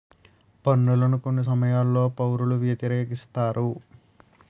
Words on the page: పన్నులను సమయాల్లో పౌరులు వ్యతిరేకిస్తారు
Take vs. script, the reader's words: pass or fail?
fail